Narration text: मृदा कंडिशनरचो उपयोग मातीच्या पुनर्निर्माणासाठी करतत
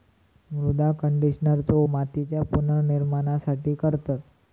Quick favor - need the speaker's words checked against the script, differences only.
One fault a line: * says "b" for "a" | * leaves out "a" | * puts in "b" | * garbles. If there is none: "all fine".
* leaves out "उपयोग"